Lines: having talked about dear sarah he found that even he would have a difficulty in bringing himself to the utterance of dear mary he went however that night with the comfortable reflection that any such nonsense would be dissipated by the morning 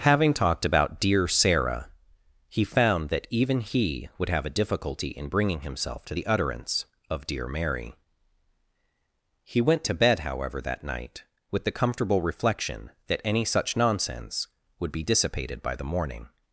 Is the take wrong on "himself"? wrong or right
right